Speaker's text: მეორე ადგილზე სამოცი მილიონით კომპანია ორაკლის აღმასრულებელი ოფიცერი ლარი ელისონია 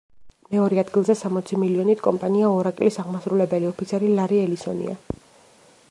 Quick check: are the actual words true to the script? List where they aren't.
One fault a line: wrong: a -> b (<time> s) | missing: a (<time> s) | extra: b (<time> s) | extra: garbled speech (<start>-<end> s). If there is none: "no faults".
no faults